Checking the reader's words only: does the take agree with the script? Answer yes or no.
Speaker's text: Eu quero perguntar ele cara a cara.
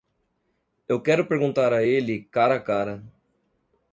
no